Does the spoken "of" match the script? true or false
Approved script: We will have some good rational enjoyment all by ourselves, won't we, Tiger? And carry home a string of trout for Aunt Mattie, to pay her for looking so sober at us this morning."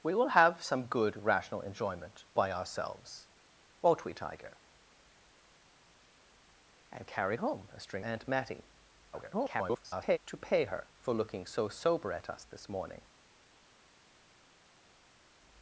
false